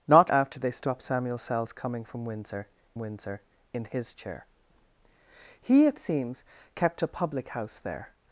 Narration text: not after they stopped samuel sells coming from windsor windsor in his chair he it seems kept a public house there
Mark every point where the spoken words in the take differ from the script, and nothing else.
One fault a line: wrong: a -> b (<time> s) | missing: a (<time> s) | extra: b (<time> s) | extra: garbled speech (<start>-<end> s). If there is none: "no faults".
no faults